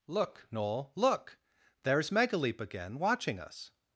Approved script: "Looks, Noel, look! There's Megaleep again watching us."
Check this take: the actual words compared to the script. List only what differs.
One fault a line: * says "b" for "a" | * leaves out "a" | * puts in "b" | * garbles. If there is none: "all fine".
* says "Look" for "Looks"